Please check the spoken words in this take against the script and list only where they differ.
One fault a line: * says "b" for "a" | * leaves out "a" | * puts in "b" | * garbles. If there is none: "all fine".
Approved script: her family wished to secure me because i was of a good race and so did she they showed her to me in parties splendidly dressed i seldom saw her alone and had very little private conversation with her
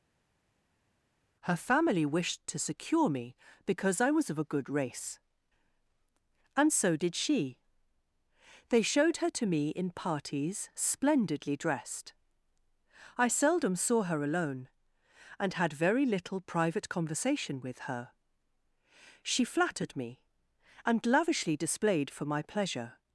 * puts in "she flattered me and lavishly displayed for my pleasure"